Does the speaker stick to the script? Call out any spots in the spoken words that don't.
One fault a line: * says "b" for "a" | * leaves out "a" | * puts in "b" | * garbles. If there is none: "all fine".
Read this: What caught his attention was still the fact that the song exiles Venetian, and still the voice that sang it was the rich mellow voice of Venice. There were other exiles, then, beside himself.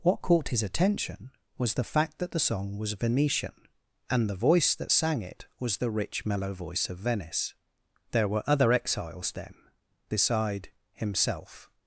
* leaves out "still"
* says "was" for "exiles"
* leaves out "still"